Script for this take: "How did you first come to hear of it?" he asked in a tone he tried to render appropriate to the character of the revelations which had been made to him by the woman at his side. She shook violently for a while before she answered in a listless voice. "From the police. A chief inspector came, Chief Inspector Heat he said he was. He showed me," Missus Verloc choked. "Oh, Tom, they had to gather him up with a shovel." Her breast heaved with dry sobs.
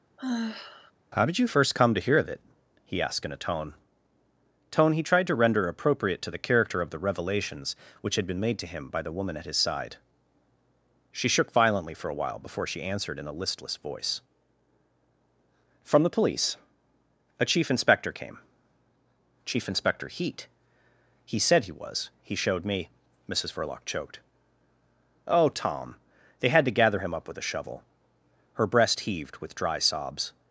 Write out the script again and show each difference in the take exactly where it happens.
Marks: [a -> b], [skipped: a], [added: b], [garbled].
"How did you first come to hear of it?" he asked in a tone [added: tone] he tried to render appropriate to the character of the revelations which had been made to him by the woman at his side. She shook violently for a while before she answered in a listless voice. "From the police. A chief inspector came, Chief Inspector Heat he said he was. He showed me," Missus Verloc choked. "Oh, Tom, they had to gather him up with a shovel." Her breast heaved with dry sobs.